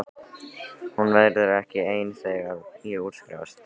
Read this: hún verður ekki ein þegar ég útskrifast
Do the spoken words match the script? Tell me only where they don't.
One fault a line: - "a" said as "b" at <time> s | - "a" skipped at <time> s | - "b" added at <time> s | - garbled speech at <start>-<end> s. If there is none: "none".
none